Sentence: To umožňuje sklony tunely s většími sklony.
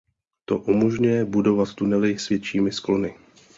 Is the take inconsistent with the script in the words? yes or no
yes